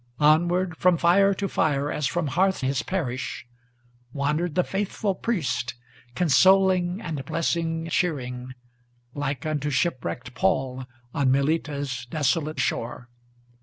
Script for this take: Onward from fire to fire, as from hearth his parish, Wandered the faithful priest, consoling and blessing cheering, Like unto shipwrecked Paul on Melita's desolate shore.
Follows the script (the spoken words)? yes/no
yes